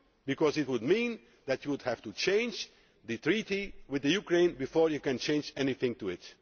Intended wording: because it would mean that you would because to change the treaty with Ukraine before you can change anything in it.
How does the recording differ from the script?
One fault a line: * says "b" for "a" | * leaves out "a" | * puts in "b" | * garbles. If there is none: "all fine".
* says "have" for "because"